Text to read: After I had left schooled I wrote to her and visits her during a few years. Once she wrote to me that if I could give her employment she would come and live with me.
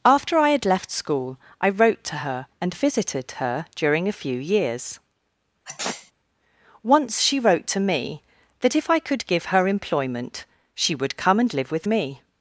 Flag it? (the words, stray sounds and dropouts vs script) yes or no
yes